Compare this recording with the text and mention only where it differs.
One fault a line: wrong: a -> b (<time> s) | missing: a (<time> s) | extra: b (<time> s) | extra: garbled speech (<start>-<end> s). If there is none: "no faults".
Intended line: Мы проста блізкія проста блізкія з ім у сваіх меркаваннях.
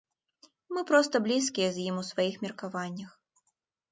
missing: проста блізкія (1.7 s)